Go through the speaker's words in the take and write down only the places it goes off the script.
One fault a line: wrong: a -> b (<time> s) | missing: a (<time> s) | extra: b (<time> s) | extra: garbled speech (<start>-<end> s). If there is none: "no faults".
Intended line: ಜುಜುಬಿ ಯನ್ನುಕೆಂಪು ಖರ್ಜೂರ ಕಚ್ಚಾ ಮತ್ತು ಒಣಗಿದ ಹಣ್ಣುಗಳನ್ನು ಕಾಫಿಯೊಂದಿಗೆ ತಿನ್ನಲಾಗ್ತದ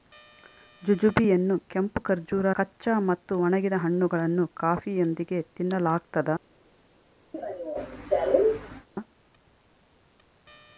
no faults